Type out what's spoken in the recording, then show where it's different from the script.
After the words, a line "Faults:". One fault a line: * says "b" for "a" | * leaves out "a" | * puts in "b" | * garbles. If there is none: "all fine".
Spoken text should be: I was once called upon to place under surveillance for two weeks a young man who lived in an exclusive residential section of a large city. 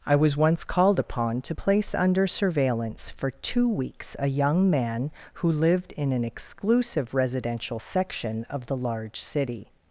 I was once called upon to place under surveillance for two weeks a young man who lived in an exclusive residential section of the large city.
Faults:
* says "the" for "a"